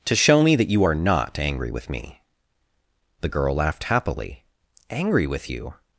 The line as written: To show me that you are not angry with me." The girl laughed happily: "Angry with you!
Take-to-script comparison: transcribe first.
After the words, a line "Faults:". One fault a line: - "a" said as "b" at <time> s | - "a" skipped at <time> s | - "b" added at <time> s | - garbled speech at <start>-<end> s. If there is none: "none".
To show me that you are not angry with me." The girl laughed happily: "Angry with you!
Faults:
none